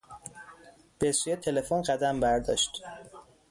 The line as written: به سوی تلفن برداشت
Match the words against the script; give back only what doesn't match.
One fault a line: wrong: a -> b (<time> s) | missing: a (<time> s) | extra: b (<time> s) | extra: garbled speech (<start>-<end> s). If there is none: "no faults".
extra: قدم (1.8 s)